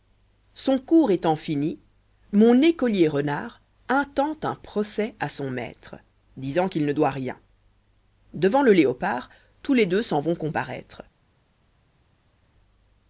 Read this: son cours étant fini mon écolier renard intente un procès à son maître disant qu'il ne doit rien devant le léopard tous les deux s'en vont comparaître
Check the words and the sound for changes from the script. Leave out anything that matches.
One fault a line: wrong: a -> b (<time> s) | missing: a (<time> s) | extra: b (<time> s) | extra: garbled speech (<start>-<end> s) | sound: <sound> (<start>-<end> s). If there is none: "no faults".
no faults